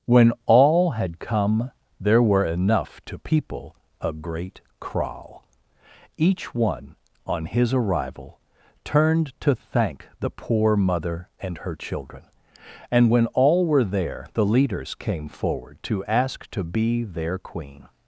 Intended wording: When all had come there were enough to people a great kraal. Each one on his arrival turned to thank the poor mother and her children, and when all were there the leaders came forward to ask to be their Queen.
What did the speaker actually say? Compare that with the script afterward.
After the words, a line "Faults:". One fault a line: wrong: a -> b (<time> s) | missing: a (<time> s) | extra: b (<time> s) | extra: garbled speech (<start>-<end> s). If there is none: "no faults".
When all had come there were enough to people a great kraal. Each one on his arrival turned to thank the poor mother and her children, and when all were there the leaders came forward to ask to be their Queen.
Faults:
no faults